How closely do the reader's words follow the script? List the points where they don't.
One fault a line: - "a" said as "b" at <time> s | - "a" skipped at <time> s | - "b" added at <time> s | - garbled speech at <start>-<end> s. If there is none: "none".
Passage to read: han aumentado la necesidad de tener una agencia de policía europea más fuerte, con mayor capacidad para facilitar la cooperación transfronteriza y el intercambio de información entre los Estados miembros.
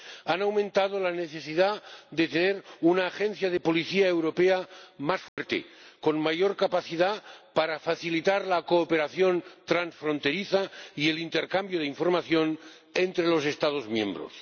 none